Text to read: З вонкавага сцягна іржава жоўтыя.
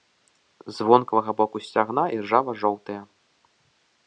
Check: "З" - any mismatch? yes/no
no